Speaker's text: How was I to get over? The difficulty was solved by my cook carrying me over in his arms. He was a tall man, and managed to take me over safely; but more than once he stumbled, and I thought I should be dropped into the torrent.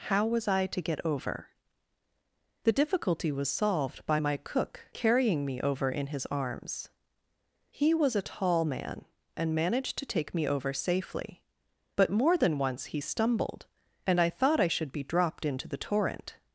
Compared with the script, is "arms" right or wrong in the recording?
right